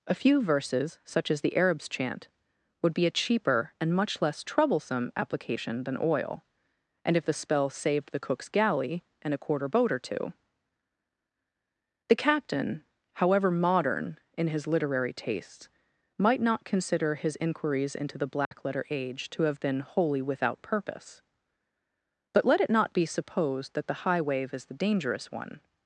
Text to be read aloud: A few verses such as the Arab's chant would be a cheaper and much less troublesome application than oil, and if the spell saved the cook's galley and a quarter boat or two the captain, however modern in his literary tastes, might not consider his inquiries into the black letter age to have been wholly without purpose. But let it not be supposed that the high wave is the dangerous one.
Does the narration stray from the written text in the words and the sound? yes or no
yes